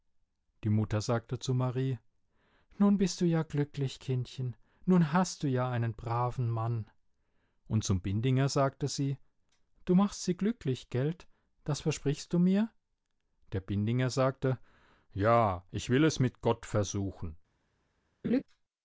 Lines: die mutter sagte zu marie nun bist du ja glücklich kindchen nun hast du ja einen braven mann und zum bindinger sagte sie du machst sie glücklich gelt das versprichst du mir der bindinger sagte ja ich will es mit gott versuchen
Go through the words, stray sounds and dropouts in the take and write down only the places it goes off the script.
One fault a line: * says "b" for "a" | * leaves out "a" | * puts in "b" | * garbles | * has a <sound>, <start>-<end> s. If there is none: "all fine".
* has a laugh, 18.2-18.4 s